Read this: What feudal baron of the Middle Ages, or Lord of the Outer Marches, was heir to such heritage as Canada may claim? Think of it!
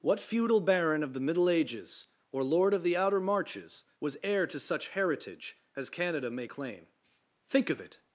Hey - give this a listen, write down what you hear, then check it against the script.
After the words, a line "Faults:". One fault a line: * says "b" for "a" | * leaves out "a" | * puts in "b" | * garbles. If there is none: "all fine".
What feudal baron of the Middle Ages, or Lord of the Outer Marches, was heir to such heritage as Canada may claim? Think of it!
Faults:
all fine